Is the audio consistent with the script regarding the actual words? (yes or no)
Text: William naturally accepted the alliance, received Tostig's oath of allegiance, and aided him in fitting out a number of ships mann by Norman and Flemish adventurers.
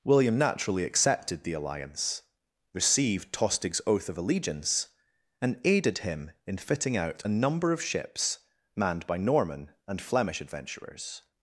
no